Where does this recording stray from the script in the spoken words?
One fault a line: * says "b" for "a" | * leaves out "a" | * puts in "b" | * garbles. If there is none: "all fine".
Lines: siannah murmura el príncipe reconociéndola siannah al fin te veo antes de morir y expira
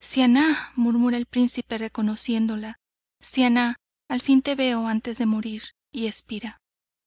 all fine